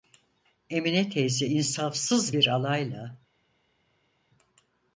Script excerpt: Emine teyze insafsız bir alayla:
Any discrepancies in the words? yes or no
no